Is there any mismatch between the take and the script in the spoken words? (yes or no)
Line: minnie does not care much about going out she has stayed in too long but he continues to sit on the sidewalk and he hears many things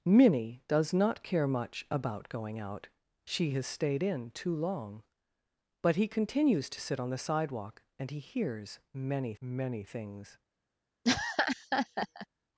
yes